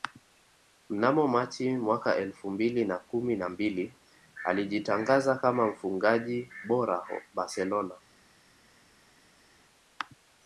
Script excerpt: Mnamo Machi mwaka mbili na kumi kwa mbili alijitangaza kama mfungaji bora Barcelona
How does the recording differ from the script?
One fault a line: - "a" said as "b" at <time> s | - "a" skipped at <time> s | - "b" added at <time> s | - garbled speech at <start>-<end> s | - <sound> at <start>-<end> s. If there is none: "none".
- "elfu" added at 2.1 s
- "kwa" said as "na" at 3.4 s